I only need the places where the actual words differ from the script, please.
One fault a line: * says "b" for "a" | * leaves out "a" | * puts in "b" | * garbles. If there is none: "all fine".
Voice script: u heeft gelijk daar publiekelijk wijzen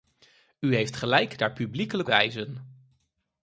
all fine